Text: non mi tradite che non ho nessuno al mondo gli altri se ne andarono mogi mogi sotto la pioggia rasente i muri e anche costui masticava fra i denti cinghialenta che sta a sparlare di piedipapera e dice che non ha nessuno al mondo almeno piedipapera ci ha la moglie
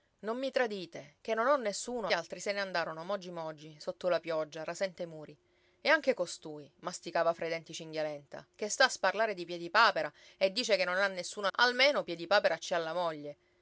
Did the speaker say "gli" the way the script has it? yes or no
no